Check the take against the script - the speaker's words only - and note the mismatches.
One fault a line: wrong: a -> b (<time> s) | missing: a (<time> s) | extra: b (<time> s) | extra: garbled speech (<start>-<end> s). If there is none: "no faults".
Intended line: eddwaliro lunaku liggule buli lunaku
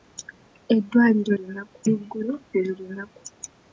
no faults